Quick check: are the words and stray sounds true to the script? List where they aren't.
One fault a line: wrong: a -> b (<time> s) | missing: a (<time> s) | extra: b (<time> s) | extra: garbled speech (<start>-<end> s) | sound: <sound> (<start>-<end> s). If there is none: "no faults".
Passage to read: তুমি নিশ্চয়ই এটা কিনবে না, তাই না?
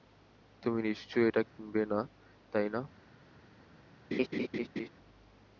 sound: dropout (1.5-1.6 s)
sound: laugh (4.1-4.9 s)